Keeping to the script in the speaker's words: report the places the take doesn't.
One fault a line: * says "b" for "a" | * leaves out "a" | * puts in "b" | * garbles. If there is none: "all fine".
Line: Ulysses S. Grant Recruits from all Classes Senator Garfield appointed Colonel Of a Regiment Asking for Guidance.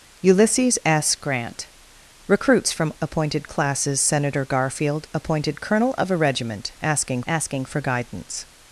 * says "appointed" for "all"
* puts in "Asking"